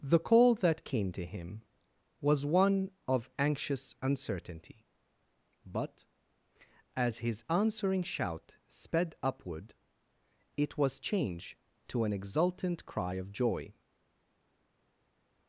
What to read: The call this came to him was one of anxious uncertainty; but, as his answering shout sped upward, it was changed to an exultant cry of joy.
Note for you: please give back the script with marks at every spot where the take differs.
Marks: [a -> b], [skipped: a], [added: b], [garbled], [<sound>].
The call [this -> that] came to him was one of anxious uncertainty; but, as his answering shout sped upward, it was changed to an exultant cry of joy.